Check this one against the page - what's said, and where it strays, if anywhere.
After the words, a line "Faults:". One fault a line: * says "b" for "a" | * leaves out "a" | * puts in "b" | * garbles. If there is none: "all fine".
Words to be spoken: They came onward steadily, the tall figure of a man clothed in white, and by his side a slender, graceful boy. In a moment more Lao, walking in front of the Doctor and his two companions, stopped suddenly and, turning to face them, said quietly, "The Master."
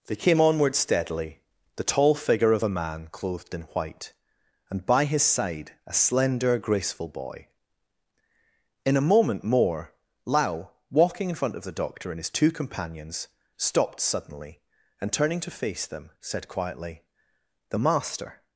They came onward steadily, the tall figure of a man clothed in white, and by his side a slender, graceful boy. In a moment more Lao, walking in front of the Doctor and his two companions, stopped suddenly and, turning to face them, said quietly, "The Master."
Faults:
all fine